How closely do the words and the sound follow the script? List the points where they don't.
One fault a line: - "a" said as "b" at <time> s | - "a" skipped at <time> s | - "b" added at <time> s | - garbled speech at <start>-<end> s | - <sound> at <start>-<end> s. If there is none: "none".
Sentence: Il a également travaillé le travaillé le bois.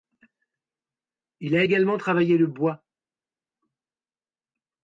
- "travaillé le" skipped at 2.5 s